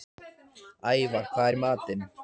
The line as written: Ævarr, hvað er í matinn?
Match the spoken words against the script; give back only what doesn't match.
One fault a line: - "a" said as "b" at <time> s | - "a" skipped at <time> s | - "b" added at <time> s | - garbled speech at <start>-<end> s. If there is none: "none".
none